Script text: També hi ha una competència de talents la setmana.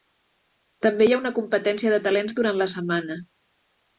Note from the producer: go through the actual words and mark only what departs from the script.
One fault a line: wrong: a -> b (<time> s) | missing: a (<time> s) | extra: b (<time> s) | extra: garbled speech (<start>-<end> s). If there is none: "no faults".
extra: durant (2.4 s)